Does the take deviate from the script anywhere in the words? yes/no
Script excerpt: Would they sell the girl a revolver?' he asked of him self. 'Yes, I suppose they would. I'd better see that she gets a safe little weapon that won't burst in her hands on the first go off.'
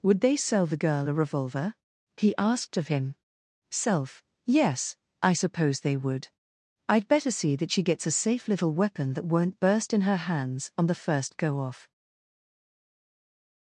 no